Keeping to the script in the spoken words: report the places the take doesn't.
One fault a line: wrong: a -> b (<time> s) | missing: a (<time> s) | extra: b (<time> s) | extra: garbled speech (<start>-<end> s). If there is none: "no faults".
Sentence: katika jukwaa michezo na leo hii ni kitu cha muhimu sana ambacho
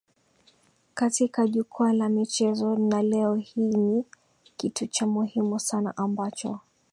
extra: la (1.9 s)